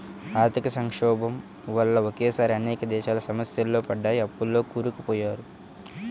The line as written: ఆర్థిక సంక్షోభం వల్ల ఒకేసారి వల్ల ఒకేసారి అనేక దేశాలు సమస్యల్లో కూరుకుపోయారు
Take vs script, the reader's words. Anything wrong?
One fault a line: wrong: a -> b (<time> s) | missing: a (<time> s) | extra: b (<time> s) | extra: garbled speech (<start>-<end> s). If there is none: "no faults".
missing: వల్ల ఒకేసారి (2.5 s)
extra: పడ్డాయి అప్పుల్లో (3.9 s)